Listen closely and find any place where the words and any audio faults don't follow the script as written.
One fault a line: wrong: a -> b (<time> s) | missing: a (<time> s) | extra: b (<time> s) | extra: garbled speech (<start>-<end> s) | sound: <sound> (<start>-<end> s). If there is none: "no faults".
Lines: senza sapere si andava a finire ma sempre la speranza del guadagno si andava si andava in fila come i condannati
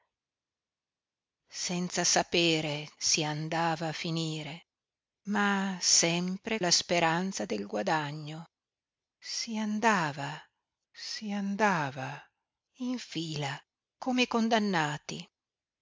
no faults